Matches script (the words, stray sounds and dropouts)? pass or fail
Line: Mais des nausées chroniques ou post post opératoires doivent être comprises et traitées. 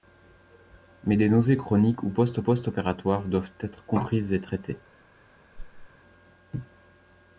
fail